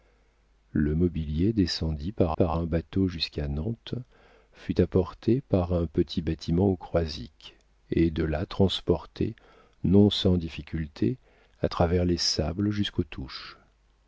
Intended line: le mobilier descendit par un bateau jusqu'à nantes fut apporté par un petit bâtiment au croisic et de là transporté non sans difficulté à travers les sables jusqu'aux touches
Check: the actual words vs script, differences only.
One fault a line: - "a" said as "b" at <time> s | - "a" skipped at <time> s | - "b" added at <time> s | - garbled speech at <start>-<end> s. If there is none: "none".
- "par" added at 2.3 s